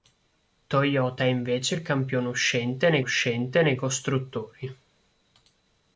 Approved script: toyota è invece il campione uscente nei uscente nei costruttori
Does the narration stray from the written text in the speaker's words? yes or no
no